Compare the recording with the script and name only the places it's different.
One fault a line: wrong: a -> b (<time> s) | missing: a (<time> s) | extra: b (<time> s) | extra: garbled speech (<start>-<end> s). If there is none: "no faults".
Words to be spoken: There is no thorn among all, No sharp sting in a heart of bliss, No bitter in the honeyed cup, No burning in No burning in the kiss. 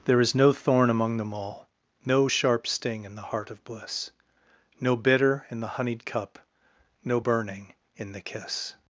extra: them (1.2 s)
wrong: a -> the (3.2 s)
missing: No burning in (8.1 s)